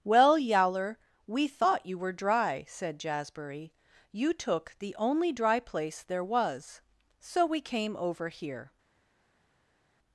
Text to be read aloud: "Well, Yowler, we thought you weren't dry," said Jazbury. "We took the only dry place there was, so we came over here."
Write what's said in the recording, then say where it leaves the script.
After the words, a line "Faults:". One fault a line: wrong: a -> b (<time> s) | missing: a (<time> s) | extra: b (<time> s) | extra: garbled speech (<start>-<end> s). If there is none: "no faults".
"Well, Yowler, we thought you were dry," said Jazbury. "You took the only dry place there was, so we came over here."
Faults:
wrong: weren't -> were (2.0 s)
wrong: We -> You (4.1 s)